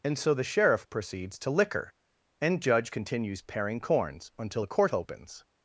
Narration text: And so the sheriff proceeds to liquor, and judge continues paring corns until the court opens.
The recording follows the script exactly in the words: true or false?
true